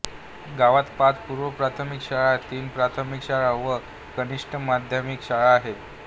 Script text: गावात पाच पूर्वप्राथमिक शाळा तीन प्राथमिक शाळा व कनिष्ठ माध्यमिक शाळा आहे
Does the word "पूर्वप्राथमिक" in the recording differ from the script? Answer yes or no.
no